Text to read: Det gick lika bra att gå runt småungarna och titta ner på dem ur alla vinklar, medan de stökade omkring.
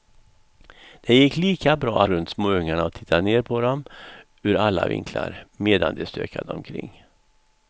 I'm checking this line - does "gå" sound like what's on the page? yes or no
no